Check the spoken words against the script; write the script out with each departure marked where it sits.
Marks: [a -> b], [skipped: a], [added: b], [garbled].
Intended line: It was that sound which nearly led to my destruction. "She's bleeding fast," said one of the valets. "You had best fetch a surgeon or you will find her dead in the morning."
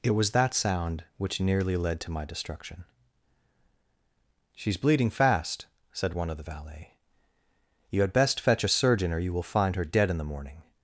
It was that sound which nearly led to my destruction. "She's bleeding fast," said one of the [valets. -> valet] "You had best fetch a surgeon or you will find her dead in the morning."